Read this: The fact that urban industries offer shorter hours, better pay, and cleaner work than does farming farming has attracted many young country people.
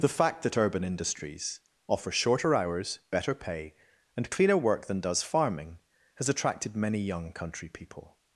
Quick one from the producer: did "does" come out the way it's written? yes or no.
yes